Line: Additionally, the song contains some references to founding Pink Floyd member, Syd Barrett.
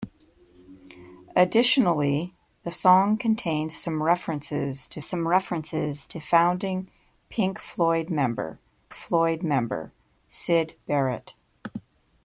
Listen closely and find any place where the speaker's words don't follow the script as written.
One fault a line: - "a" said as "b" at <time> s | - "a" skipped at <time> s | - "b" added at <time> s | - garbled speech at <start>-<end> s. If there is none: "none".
- "some references to" added at 5.0 s
- "Floyd member" added at 8.9 s